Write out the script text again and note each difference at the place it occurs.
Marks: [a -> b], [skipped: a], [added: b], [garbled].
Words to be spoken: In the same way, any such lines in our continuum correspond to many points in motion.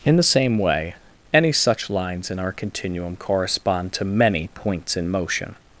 In the same way, any such lines in our continuum correspond to many points in motion.